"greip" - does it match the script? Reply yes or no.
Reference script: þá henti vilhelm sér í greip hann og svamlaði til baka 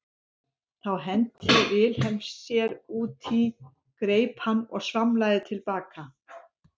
yes